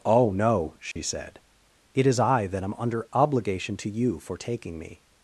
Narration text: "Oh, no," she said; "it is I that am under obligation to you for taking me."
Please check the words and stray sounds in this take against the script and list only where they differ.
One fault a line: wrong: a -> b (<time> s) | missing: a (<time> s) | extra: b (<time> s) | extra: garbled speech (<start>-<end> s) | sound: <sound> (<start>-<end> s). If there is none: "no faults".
sound: dropout (0.9-1.0 s)